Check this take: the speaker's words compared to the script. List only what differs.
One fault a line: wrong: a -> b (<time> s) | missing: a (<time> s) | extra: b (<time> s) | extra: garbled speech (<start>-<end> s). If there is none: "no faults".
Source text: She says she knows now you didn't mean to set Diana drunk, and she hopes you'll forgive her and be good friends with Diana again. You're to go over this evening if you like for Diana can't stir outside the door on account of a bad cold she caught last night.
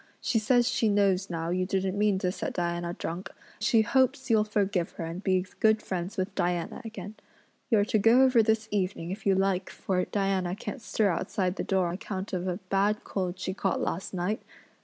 missing: and (3.3 s)
missing: on (11.9 s)